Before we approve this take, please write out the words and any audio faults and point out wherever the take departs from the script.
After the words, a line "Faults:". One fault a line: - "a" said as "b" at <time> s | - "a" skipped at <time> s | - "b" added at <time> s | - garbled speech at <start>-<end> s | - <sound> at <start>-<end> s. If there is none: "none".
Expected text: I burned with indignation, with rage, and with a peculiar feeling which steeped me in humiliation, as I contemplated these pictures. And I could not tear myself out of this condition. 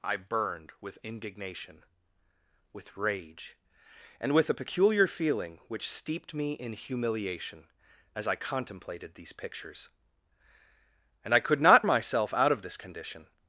I burned with indignation, with rage, and with a peculiar feeling which steeped me in humiliation, as I contemplated these pictures. And I could not myself out of this condition.
Faults:
- "tear" skipped at 11.8 s